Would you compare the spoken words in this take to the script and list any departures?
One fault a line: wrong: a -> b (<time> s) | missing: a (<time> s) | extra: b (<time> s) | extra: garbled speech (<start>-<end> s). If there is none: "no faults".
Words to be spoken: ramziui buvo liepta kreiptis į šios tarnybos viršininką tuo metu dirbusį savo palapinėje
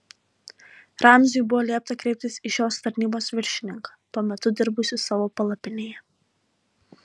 no faults